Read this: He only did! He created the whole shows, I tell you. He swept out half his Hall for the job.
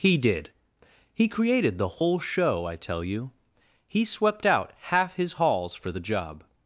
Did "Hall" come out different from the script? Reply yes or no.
yes